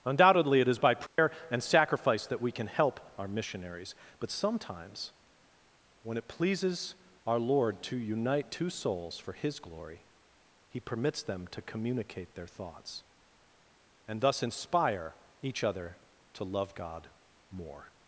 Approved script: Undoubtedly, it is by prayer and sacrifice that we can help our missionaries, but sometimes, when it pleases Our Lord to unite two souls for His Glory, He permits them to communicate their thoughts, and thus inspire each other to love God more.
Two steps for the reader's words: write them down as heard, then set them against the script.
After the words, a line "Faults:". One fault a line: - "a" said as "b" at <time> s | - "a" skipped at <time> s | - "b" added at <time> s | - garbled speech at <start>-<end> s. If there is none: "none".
Undoubtedly, it is by prayer and sacrifice that we can help our missionaries, but sometimes, when it pleases Our Lord to unite two souls for His Glory, He permits them to communicate their thoughts, and thus inspire each other to love God more.
Faults:
none